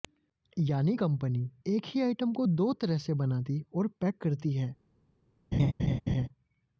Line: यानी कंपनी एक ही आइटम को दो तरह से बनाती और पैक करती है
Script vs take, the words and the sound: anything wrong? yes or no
yes